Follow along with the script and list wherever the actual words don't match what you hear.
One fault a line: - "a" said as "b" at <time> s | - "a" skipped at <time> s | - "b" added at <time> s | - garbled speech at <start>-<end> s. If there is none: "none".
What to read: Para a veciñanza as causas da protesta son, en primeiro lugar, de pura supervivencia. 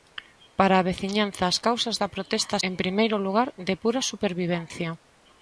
- "son" skipped at 2.6 s